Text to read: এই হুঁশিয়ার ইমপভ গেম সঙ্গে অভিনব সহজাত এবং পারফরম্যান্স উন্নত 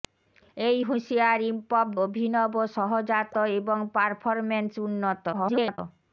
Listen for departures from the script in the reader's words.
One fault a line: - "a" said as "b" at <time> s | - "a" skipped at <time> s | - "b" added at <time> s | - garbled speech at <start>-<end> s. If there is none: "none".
- "গেম সঙ্গে" skipped at 1.9 s
- garbled speech at 5.3-5.8 s